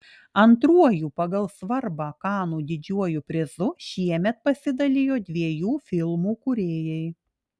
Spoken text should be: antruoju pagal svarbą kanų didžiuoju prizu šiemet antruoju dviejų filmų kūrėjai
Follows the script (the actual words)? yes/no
no